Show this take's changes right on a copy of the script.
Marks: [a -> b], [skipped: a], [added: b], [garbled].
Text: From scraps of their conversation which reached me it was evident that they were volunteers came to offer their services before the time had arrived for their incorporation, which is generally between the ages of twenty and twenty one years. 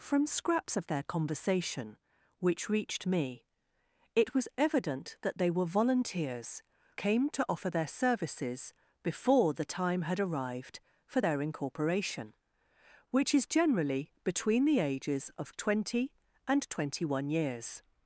From scraps of their conversation which reached me it was evident that they were volunteers came to offer their services before the time had arrived for their incorporation, which is generally between the ages of twenty and twenty one years.